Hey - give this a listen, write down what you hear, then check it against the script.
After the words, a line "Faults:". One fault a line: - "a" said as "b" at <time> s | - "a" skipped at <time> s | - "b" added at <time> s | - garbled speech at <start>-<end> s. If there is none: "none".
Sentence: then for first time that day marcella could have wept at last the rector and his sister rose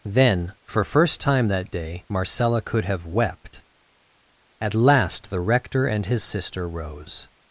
then for first time that day marcella could have wept at last the rector and his sister rose
Faults:
none